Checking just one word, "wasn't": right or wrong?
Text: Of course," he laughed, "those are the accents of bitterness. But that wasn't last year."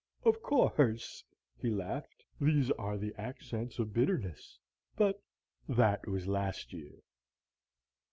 wrong